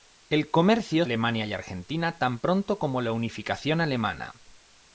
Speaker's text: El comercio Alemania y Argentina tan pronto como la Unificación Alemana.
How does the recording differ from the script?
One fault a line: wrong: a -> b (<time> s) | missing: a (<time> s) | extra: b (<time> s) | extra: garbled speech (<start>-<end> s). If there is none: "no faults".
no faults